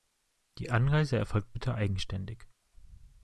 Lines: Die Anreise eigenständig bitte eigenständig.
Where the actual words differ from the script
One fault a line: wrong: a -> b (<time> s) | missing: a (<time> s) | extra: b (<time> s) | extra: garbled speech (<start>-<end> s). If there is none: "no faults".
wrong: eigenständig -> erfolgt (1.2 s)